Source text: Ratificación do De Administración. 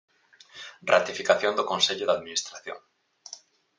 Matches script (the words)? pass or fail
fail